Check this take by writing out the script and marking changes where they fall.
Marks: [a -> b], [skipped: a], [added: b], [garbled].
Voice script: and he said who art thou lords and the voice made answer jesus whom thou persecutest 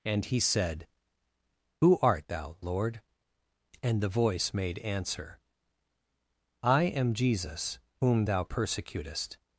and he said who art thou [lords -> lord] and the voice made answer [added: i am] jesus whom thou persecutest